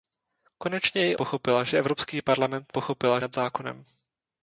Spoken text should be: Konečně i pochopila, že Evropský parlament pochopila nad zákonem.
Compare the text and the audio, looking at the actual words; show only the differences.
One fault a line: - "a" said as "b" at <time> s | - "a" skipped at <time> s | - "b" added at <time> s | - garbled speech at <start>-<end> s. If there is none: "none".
none